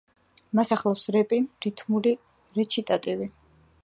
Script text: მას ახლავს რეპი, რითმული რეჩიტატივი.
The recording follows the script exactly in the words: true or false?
true